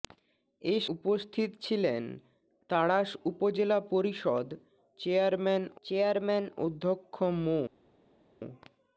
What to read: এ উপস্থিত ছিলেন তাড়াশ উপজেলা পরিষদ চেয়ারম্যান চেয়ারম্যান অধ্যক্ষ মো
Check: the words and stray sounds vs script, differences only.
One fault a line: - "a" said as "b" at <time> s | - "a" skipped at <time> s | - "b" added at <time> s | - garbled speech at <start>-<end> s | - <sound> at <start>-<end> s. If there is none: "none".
none